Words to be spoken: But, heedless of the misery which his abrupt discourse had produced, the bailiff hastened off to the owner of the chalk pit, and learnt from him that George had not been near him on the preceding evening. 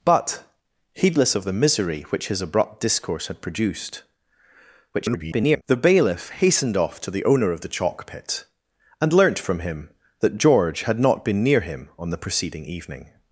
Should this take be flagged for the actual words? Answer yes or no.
yes